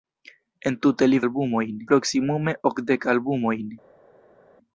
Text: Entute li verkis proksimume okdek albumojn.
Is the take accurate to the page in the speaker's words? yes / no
no